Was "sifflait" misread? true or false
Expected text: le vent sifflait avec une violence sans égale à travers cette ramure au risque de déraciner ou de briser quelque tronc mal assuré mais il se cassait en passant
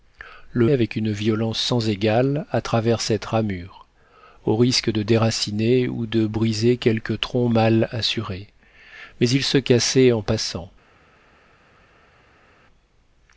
true